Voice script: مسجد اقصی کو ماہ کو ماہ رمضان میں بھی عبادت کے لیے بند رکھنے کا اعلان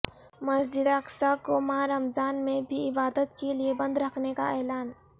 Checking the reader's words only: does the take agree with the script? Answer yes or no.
no